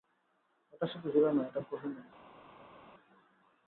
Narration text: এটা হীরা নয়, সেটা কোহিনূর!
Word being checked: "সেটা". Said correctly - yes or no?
no